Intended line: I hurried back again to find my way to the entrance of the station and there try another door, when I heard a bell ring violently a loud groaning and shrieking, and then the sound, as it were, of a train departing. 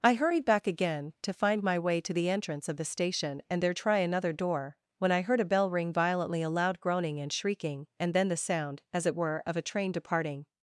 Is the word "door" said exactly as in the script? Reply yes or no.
yes